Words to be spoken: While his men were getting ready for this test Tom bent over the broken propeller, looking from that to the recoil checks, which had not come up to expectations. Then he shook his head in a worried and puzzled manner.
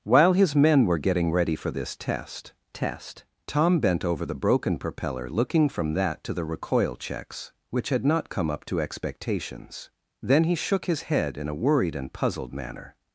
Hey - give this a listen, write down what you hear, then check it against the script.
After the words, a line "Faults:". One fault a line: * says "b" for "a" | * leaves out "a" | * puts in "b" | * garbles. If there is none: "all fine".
While his men were getting ready for this test test Tom bent over the broken propeller, looking from that to the recoil checks, which had not come up to expectations. Then he shook his head in a worried and puzzled manner.
Faults:
* puts in "test"